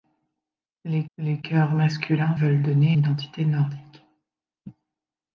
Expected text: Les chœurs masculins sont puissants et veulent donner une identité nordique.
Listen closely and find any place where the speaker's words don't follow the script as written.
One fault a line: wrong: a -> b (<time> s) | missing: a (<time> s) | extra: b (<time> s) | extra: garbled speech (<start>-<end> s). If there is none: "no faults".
extra: les (1.2 s)
missing: sont puissants et (2.4 s)
missing: une (3.0 s)